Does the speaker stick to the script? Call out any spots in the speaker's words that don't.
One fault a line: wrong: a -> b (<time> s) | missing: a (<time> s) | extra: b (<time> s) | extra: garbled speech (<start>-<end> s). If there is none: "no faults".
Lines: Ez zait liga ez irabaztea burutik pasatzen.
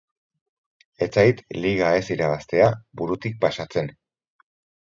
no faults